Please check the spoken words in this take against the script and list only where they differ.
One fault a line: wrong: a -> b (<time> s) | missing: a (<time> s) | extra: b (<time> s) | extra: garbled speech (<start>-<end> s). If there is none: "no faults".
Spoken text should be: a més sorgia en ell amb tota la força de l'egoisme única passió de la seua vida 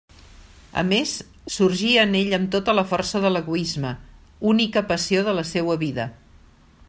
no faults